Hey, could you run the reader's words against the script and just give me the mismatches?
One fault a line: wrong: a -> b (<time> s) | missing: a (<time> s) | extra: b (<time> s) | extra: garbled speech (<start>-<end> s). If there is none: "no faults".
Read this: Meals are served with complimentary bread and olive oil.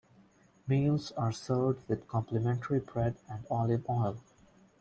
no faults